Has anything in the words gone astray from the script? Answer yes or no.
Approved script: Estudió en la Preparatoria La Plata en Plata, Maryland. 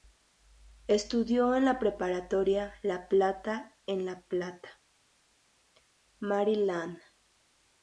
yes